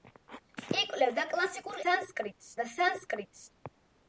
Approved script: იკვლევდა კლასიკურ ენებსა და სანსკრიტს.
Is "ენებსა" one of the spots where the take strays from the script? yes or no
yes